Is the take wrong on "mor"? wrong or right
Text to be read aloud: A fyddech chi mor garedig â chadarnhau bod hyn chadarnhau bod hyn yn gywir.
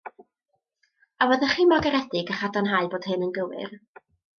right